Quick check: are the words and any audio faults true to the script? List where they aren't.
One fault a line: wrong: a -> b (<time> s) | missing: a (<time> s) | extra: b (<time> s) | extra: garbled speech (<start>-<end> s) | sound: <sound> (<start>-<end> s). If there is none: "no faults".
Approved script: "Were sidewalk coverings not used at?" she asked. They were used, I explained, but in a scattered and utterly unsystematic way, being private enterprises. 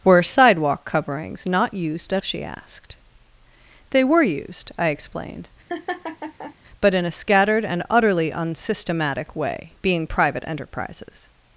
sound: laugh (5.7-6.6 s)